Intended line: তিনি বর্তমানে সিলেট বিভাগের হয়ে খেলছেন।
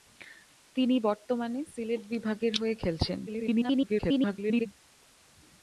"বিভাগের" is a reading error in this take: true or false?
false